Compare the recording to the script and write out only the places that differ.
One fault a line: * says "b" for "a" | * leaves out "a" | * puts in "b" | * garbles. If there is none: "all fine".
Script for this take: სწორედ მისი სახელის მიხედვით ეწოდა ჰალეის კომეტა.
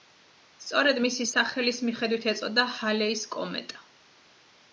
all fine